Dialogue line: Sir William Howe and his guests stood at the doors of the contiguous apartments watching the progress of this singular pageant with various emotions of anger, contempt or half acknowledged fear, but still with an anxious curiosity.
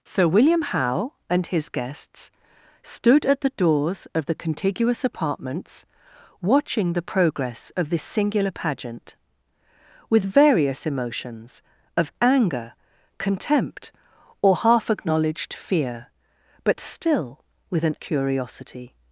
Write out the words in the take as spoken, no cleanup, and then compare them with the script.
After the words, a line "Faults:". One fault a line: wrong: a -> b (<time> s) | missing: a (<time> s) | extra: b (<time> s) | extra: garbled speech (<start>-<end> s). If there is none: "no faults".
Sir William Howe and his guests stood at the doors of the contiguous apartments watching the progress of this singular pageant with various emotions of anger, contempt or half acknowledged fear, but still with an curiosity.
Faults:
missing: anxious (17.9 s)